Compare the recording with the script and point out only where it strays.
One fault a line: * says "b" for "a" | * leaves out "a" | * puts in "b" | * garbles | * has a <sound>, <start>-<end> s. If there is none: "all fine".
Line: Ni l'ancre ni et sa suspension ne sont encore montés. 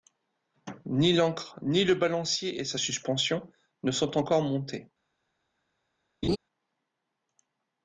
* puts in "le balancier"
* has a laugh, 6.2-6.4 s